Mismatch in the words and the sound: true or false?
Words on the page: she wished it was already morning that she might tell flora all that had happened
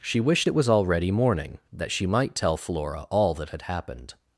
false